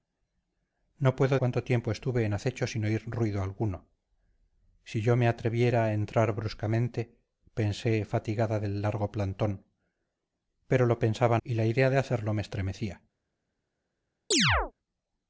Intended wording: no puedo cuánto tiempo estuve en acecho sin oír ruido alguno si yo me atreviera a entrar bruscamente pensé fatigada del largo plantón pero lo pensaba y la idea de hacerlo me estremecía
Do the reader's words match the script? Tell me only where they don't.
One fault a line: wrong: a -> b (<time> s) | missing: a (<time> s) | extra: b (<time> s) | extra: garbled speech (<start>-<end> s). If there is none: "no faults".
no faults